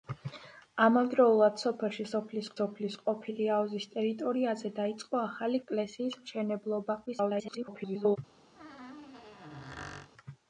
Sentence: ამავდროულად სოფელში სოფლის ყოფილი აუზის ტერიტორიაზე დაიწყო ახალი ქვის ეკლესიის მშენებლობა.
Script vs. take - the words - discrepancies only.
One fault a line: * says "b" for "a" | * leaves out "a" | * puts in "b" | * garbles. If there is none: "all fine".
* puts in "სოფლის"
* leaves out "ქვის"
* garbles